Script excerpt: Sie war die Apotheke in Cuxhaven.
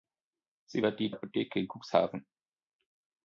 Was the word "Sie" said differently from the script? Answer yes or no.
no